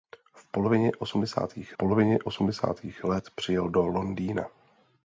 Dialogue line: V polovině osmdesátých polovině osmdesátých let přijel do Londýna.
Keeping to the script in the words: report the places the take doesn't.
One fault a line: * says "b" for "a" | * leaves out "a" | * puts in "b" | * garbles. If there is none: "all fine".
all fine